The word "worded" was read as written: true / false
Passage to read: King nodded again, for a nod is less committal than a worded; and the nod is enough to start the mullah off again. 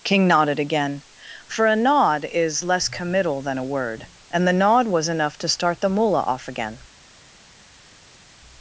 false